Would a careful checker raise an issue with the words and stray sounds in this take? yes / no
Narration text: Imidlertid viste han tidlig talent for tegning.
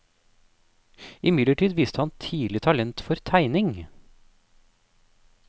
no